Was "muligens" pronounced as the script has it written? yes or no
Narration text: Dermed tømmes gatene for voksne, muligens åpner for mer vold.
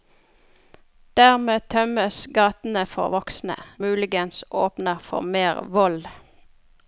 yes